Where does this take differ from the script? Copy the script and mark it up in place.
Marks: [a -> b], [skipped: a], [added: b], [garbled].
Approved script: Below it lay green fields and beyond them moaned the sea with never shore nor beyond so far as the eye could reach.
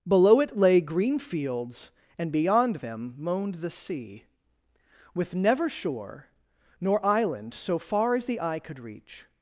Below it lay green fields and beyond them moaned the sea with never shore nor [beyond -> island] so far as the eye could reach.